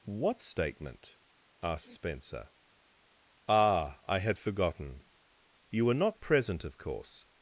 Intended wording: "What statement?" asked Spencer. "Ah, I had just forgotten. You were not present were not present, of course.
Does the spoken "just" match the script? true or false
false